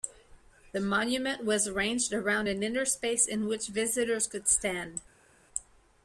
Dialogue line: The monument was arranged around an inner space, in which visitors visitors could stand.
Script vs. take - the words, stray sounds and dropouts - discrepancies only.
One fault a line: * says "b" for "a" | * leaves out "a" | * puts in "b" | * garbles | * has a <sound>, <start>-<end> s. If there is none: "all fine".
* leaves out "visitors"